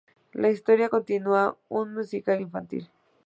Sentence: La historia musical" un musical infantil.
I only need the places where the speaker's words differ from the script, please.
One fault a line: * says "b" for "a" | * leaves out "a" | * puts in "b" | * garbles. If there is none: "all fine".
* says "continúa" for "musical"